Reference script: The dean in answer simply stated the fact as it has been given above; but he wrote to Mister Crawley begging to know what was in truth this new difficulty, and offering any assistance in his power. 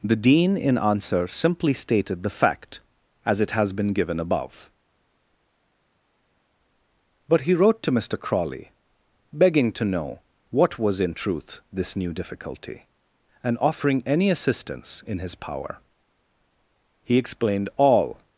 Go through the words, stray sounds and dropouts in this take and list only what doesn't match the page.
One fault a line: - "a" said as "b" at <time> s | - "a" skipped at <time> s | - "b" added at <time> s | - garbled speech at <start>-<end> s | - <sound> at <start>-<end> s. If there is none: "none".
- "He explained all" added at 17.0 s